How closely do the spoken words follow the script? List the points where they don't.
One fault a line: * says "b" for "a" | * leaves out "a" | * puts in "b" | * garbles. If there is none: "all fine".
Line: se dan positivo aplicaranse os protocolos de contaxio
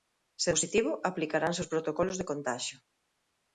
* leaves out "dan"